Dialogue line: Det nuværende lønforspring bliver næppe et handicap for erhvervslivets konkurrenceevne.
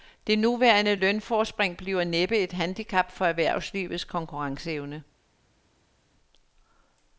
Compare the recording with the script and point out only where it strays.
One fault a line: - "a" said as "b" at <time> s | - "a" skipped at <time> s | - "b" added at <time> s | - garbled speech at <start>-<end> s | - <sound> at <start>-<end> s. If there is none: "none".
none